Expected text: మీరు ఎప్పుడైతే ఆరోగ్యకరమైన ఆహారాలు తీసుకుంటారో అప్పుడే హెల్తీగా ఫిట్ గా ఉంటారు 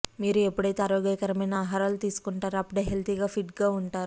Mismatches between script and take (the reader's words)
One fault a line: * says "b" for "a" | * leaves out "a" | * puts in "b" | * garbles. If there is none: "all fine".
all fine